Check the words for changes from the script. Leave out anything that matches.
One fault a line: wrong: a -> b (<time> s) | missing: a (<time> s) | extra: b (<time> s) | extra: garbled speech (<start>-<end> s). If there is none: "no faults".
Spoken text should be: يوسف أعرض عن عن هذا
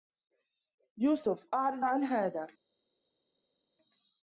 missing: عن (2.0 s)